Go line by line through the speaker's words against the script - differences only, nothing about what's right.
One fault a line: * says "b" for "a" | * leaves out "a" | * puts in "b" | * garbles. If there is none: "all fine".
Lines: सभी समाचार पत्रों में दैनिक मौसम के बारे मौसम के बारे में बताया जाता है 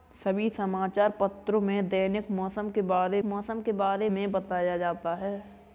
all fine